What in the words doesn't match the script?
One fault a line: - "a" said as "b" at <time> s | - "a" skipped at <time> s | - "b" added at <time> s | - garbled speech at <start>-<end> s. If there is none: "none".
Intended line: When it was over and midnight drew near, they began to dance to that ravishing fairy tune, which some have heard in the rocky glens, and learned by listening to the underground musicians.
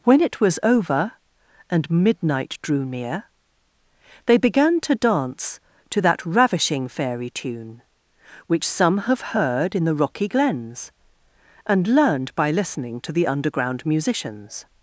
none